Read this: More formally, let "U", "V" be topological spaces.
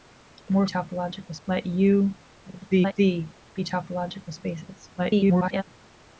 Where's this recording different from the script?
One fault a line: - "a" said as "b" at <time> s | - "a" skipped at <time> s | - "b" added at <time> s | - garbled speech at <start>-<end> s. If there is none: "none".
- "formally" said as "topological" at 0.7 s
- garbled speech at 2.4-2.9 s
- garbled speech at 5.0-5.6 s